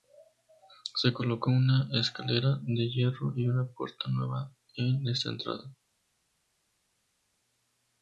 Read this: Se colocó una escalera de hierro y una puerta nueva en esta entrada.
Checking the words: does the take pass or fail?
pass